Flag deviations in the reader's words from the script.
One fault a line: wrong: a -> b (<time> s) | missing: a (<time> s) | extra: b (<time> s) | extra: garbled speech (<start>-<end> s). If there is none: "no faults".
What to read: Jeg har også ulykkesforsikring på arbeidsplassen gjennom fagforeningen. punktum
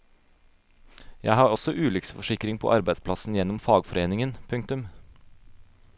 no faults